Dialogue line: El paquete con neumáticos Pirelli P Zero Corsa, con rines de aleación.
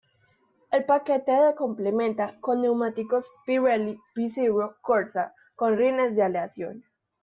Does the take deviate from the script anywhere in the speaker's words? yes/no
yes